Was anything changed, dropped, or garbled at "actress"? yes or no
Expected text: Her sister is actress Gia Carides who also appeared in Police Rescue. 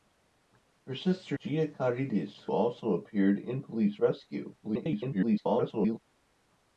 yes